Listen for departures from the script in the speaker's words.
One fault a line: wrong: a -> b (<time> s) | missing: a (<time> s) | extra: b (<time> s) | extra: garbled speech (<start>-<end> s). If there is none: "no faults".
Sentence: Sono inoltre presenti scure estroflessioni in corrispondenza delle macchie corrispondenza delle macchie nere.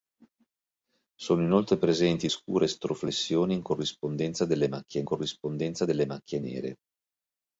no faults